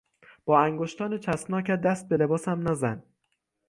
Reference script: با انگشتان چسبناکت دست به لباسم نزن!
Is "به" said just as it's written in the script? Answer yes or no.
yes